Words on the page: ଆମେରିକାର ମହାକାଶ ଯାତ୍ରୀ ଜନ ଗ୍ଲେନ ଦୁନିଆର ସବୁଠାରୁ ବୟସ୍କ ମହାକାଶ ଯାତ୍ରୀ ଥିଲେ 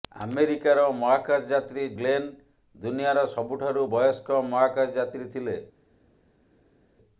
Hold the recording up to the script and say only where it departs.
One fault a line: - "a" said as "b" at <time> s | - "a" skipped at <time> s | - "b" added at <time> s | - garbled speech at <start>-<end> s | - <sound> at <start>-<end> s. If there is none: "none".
- "ଜନ" skipped at 1.8 s